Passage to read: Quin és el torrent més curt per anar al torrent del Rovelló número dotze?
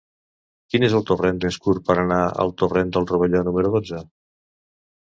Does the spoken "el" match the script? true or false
true